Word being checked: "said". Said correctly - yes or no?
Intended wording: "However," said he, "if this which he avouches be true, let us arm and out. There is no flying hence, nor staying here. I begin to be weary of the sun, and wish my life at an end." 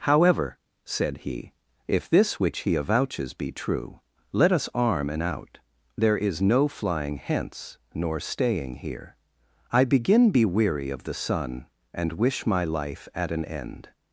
yes